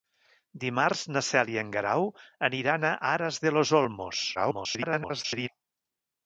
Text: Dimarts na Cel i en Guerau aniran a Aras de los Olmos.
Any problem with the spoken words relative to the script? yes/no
yes